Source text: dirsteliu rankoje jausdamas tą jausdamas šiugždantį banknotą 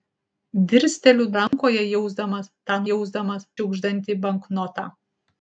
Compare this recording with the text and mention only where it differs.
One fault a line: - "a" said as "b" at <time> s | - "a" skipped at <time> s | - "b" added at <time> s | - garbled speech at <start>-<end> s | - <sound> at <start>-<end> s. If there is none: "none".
- dropout at 1.5-1.5 s